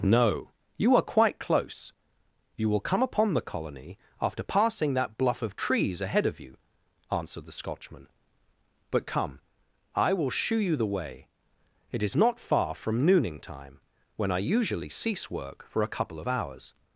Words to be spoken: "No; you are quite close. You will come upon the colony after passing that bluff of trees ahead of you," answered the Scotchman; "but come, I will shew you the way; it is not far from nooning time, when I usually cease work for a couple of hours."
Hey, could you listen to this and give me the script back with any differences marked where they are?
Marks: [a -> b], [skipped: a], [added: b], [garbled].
"No; you are quite close. You will come upon the colony after passing that bluff of trees ahead of you," answered the Scotchman; "but come, I will shew you the way; it is not far from nooning time, when I usually cease work for a couple of hours."